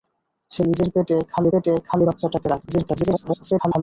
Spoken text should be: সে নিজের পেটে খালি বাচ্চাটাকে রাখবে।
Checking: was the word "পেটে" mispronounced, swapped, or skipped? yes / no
no